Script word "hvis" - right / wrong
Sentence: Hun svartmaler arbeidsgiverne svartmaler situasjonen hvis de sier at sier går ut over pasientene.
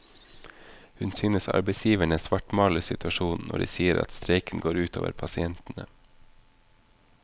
wrong